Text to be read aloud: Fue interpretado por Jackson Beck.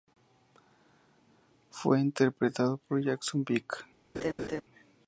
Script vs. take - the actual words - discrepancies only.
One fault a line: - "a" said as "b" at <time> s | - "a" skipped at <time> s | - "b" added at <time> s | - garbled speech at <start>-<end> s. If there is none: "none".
none